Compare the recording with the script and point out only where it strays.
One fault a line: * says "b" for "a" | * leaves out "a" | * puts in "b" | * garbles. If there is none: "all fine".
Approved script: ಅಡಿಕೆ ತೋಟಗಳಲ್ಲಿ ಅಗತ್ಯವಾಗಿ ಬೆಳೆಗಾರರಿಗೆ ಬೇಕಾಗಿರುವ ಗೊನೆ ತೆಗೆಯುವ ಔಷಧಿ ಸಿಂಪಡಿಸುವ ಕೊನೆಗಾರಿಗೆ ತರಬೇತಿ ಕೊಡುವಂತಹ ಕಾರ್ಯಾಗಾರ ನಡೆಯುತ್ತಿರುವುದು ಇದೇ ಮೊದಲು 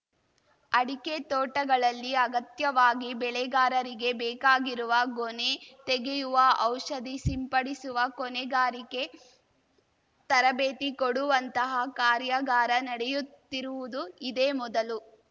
all fine